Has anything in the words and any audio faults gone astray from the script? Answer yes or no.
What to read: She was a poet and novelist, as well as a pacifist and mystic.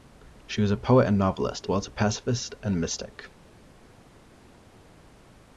yes